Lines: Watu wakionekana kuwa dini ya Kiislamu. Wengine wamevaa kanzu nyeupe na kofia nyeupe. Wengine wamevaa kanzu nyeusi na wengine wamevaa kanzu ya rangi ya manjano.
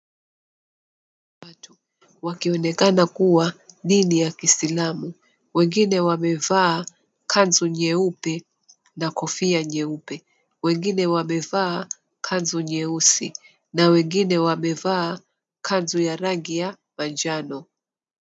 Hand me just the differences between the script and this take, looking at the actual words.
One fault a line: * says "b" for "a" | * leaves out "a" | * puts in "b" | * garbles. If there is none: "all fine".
all fine